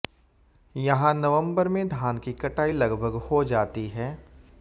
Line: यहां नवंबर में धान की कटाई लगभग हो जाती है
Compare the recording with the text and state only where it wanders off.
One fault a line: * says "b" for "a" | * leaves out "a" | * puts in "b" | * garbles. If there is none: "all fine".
all fine